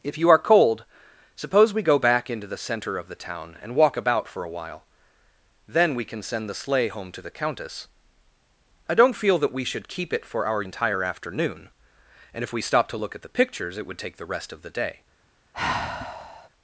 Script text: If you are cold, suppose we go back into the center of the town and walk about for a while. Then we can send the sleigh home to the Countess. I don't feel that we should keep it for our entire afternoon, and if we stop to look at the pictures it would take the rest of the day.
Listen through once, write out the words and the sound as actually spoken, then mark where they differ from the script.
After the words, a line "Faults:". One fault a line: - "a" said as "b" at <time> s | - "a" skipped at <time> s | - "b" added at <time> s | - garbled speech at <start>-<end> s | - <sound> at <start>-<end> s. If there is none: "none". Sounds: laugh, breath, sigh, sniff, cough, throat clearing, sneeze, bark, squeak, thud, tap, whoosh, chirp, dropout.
If you are cold, suppose we go back into the center of the town and walk about for a while. Then we can send the sleigh home to the Countess. I don't feel that we should keep it for our entire afternoon, and if we stop to look at the pictures it would take the rest of the day.
Faults:
- sigh at 15.5-16.5 s